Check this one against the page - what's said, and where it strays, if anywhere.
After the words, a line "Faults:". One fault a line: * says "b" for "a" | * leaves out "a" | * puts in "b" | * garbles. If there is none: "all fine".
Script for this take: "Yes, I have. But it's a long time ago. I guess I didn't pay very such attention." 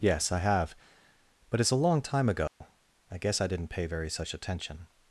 "Yes, I have. But it's a long time ago. I guess I didn't pay very such attention."
Faults:
all fine